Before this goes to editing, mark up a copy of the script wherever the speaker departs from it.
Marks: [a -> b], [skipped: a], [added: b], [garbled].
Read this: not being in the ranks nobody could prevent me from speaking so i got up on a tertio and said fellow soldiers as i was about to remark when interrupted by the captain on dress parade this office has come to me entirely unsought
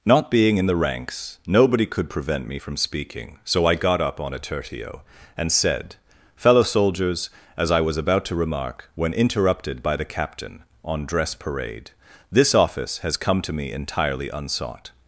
not being in the ranks nobody could prevent me from speaking so i got up on a tertio and said fellow soldiers as i was about to remark when interrupted by the captain on dress parade this office has come to me entirely unsought